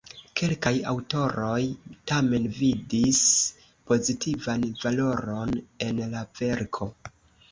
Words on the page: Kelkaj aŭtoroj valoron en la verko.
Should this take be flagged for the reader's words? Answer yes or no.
yes